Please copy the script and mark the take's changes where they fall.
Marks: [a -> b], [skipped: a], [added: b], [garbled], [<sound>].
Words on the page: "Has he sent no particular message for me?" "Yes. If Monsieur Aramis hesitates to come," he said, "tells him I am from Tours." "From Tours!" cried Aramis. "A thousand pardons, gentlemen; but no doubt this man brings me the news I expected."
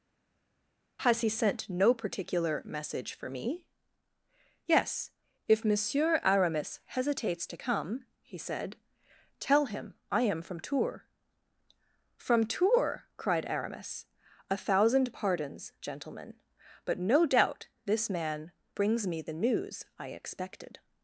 "Has he sent no particular message for me?" "Yes. If Monsieur Aramis hesitates to come," he said, ["tells -> tell] him I am from Tours." "From Tours!" cried Aramis. "A thousand pardons, gentlemen; but no doubt this man brings me the news I expected."